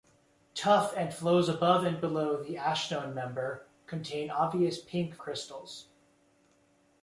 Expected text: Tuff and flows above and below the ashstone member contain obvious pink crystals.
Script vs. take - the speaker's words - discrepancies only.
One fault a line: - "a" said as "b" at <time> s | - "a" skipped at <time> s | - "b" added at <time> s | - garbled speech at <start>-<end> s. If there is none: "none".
none